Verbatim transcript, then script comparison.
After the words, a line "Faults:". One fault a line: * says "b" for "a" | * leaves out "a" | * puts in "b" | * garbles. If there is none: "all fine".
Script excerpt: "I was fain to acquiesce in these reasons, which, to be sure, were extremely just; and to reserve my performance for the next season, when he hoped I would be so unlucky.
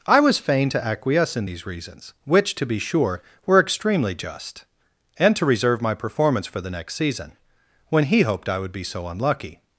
"I was fain to acquiesce in these reasons, which, to be sure, were extremely just; and to reserve my performance for the next season, when he hoped I would be so unlucky.
Faults:
all fine